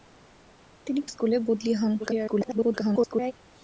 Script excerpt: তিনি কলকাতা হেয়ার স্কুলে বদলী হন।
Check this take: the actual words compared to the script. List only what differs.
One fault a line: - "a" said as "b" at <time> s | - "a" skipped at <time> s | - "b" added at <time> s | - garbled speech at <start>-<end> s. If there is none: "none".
- "কলকাতা হেয়ার" skipped at 1.0 s
- garbled speech at 2.0-3.3 s